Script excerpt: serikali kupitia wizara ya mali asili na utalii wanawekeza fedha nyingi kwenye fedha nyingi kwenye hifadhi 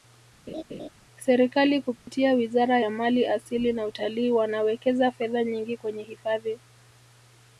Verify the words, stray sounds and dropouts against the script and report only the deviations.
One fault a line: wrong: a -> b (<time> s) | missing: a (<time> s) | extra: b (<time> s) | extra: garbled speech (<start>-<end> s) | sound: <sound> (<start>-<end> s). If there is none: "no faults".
sound: laugh (0.5-0.9 s)
sound: dropout (2.0-2.1 s)
missing: fedha nyingi kwenye (6.0 s)